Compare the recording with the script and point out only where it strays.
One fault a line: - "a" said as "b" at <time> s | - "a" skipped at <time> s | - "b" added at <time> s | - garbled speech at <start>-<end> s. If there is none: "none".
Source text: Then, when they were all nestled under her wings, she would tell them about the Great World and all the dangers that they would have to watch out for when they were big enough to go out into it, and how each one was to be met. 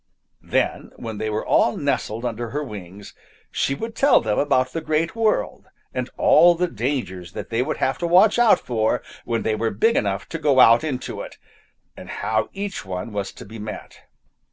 none